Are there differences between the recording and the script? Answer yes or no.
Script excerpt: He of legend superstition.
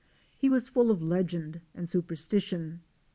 yes